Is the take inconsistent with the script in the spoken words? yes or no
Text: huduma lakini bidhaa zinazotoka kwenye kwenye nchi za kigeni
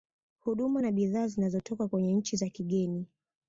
yes